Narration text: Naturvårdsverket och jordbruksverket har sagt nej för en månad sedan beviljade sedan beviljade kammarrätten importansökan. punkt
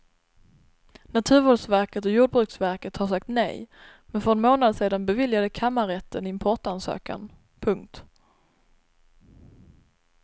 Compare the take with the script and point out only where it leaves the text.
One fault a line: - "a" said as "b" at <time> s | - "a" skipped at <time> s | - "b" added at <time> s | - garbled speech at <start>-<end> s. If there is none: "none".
- "men" added at 4.0 s
- "sedan beviljade" skipped at 5.5 s